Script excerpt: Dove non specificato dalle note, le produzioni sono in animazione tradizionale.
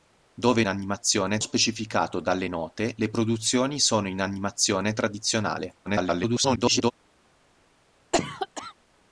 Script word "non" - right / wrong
wrong